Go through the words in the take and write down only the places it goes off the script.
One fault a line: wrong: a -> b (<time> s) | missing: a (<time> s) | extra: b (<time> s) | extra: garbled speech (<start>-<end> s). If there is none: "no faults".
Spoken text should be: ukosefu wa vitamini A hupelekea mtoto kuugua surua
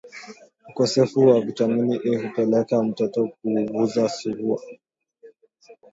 no faults